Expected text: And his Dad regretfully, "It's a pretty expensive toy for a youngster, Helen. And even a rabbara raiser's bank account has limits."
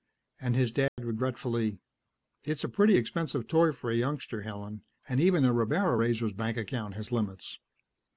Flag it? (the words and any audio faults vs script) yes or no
yes